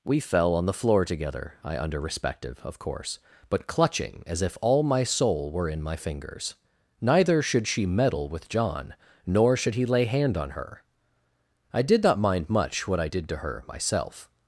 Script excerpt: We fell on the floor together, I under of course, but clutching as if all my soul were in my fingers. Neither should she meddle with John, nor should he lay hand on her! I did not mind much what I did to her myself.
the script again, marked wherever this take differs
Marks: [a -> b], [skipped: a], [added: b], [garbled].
We fell on the floor together, I under [added: respective] of course, but clutching as if all my soul were in my fingers. Neither should she meddle with John, nor should he lay hand on her! I did not mind much what I did to her myself.